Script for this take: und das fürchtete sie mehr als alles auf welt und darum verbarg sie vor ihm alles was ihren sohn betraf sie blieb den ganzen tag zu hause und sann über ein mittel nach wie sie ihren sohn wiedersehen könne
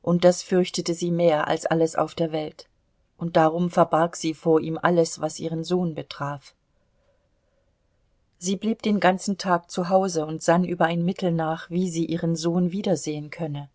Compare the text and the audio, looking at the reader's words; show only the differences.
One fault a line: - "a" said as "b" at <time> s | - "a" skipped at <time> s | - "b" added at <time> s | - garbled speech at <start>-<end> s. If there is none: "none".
- "der" added at 2.1 s